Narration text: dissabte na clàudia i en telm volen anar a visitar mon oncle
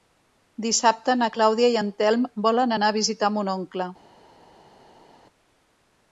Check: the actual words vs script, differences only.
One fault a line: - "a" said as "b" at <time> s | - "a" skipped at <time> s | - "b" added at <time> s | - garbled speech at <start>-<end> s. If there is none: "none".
none